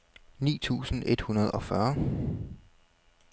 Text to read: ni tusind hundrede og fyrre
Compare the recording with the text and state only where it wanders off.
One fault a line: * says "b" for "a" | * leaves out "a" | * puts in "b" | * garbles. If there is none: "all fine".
* puts in "et"